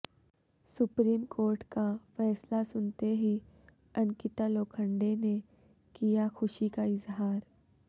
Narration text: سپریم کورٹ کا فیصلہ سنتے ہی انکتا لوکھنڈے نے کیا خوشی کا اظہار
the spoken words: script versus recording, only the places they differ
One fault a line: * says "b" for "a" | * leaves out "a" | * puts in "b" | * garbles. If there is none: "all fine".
all fine